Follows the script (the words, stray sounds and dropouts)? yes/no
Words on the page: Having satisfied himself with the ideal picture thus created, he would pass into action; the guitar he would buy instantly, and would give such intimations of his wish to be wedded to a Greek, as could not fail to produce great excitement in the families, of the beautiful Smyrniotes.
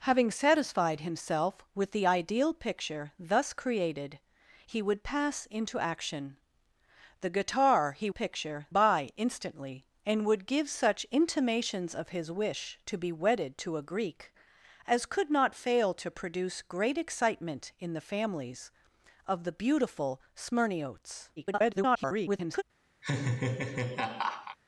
no